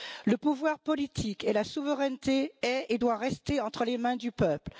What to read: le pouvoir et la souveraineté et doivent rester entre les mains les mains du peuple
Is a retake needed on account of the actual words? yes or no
yes